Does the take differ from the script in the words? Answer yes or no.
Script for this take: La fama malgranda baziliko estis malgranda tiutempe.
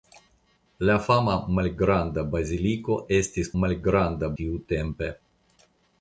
no